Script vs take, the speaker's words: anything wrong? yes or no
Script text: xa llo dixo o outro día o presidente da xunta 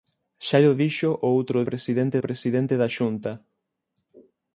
yes